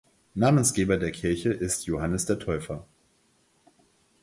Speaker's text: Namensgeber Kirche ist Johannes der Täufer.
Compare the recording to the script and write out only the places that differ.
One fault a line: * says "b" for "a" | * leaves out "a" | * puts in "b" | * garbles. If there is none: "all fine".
* puts in "der"